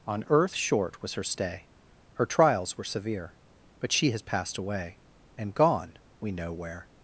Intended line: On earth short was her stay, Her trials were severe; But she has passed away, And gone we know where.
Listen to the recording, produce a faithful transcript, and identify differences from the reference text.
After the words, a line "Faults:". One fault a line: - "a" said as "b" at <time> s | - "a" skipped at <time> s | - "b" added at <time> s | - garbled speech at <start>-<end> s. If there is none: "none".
On earth short was her stay, Her trials were severe; But she has passed away, And gone we know where.
Faults:
none